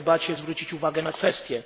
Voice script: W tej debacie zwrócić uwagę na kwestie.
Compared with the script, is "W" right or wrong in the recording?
right